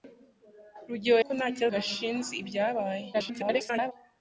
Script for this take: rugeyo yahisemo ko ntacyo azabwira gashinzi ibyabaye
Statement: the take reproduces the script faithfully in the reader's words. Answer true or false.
false